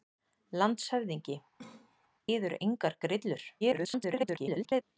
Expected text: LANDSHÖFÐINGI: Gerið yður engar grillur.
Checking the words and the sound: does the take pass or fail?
fail